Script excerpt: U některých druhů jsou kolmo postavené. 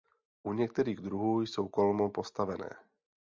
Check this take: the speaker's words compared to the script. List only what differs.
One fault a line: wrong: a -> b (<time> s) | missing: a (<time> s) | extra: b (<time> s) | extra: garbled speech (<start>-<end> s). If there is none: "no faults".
no faults